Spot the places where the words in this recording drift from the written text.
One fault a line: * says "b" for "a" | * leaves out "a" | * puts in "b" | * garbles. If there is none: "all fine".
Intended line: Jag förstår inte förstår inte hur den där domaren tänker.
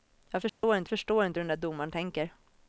all fine